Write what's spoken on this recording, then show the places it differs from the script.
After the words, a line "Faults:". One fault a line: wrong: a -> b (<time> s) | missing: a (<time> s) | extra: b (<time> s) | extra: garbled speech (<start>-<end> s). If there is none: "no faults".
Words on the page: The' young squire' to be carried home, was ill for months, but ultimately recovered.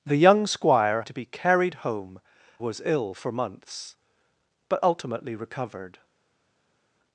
The' young squire' to be carried home, was ill for months, but ultimately recovered.
Faults:
no faults